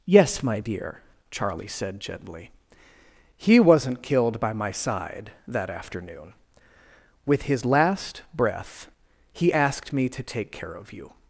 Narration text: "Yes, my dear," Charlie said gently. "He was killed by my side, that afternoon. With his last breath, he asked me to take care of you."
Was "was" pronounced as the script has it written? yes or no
no